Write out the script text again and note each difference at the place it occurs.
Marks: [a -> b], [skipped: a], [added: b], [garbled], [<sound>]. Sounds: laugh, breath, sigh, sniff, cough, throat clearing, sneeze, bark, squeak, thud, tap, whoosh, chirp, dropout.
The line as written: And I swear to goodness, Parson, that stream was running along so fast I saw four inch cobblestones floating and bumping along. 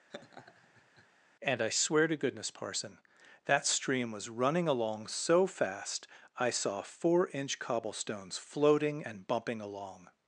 [laugh] And I swear to goodness, Parson, that stream was running along so fast I saw four inch cobblestones floating and bumping along.